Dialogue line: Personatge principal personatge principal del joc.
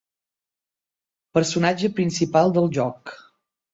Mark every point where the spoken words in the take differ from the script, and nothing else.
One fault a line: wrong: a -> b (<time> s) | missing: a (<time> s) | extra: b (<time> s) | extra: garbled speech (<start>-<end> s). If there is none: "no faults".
missing: personatge principal (2.5 s)